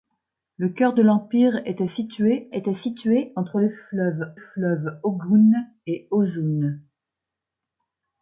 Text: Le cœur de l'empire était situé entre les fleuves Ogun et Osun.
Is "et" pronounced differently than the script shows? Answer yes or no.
no